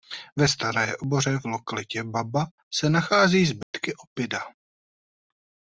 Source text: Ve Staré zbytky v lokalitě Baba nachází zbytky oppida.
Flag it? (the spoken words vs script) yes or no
yes